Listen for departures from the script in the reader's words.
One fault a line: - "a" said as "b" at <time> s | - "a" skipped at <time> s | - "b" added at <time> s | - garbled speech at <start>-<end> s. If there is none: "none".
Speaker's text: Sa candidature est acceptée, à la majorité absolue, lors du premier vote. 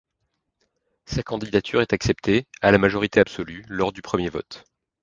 none